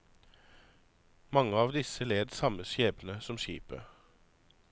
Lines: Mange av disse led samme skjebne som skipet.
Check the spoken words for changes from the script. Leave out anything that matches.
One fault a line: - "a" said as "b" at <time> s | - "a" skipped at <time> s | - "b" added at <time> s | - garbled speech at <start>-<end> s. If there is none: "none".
none